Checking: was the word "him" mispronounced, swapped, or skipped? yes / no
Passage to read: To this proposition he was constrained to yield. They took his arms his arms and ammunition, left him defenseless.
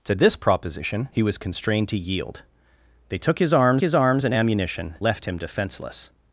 no